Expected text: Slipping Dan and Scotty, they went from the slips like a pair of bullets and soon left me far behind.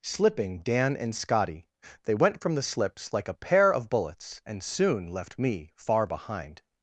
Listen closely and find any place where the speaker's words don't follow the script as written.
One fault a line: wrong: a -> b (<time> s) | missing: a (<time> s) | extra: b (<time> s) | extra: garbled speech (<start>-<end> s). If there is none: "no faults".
no faults